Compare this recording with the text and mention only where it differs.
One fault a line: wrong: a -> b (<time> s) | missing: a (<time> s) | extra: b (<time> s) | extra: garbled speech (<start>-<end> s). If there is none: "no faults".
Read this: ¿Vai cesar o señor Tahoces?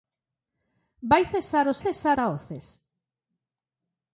wrong: señor -> cesar (1.8 s)